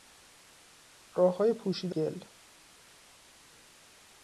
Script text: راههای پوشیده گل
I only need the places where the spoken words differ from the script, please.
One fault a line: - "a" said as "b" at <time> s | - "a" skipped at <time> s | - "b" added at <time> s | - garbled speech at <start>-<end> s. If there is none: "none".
none